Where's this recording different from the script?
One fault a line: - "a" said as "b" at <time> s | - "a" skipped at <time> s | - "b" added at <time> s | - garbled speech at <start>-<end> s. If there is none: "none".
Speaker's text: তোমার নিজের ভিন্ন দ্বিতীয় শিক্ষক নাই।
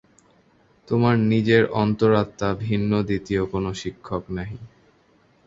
- "অন্তরাত্মা" added at 1.8 s
- "কোন" added at 3.4 s